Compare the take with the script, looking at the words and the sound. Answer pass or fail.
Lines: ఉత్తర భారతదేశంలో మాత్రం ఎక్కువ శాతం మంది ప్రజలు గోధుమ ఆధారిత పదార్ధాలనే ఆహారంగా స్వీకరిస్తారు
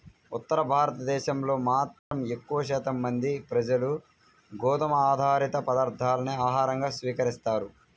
fail